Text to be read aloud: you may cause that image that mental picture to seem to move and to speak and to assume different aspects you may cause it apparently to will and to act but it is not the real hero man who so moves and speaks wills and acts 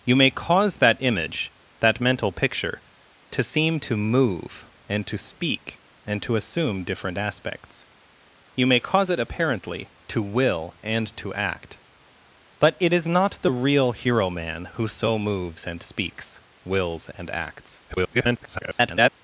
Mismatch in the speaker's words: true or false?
true